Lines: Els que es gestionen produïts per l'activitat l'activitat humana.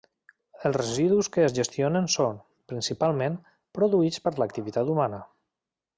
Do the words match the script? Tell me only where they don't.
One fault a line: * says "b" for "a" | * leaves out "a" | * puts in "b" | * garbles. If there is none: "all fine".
* puts in "residus"
* puts in "són principalment"
* leaves out "l'activitat"